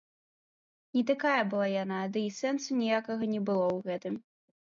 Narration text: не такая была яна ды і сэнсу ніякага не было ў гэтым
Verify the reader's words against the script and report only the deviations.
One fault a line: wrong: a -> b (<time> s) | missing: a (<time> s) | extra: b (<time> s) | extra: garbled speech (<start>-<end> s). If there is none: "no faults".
no faults